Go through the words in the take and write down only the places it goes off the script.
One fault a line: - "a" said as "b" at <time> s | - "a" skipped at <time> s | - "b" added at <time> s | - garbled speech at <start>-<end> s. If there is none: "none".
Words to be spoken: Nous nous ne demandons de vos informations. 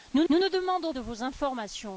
none